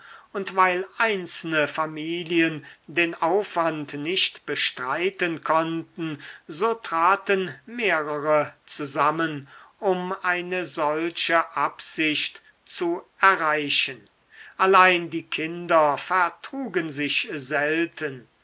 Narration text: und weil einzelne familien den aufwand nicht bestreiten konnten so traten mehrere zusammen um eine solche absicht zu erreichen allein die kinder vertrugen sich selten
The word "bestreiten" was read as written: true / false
true